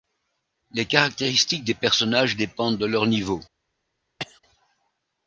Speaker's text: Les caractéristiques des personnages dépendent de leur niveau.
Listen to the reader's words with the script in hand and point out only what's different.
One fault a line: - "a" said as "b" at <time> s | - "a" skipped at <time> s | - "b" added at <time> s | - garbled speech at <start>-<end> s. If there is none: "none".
none